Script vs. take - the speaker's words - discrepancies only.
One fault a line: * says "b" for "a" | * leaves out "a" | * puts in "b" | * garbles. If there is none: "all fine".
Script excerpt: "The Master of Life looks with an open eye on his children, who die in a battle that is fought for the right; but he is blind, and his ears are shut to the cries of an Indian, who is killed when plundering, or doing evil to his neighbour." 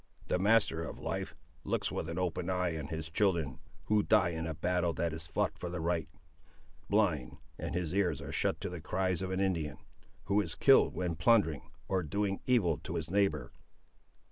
* leaves out "but he is"